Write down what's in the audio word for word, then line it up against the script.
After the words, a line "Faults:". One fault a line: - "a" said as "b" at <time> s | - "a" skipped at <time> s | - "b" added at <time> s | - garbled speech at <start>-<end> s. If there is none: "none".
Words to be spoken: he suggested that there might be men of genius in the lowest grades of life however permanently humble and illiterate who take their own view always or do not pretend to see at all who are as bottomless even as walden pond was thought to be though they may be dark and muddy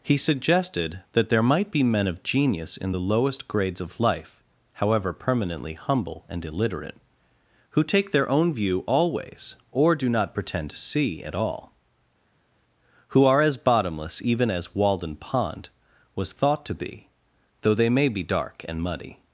he suggested that there might be men of genius in the lowest grades of life however permanently humble and illiterate who take their own view always or do not pretend to see at all who are as bottomless even as walden pond was thought to be though they may be dark and muddy
Faults:
none